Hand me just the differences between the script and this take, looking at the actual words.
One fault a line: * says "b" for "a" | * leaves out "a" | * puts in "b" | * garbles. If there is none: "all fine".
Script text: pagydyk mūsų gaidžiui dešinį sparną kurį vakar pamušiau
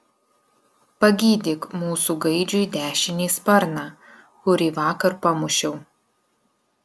all fine